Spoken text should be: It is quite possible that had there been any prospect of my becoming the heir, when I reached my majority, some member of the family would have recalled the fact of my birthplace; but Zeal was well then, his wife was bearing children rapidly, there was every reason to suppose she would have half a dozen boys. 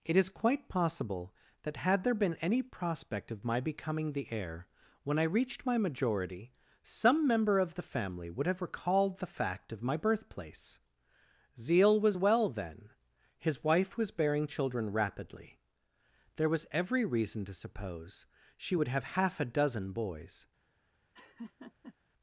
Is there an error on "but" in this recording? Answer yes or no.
yes